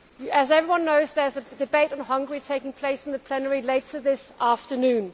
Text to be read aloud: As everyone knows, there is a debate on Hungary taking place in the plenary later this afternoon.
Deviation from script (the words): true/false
false